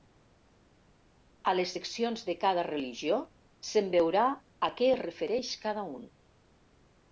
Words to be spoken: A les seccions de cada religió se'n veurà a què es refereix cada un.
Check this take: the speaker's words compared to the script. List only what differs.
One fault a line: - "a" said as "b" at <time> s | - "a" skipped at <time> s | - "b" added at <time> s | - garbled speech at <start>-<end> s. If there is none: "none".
none